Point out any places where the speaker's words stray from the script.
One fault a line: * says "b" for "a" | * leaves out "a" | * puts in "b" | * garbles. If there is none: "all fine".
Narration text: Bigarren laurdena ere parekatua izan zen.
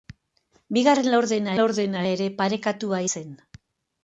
* puts in "laurdena"
* leaves out "izan"